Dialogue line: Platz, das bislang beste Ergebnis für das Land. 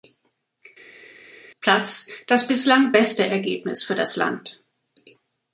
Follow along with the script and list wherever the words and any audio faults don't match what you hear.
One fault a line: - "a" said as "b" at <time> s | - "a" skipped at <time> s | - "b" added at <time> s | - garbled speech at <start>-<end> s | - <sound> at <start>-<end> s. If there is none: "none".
none